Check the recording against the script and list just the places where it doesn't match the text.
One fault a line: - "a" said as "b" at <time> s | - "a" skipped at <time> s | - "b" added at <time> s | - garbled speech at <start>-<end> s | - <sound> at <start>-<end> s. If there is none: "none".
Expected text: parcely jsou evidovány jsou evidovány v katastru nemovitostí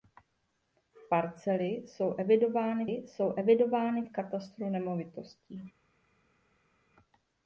none